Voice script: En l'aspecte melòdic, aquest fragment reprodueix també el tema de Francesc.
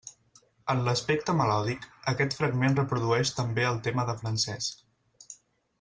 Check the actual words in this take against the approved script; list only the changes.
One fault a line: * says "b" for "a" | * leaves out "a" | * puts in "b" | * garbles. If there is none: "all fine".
all fine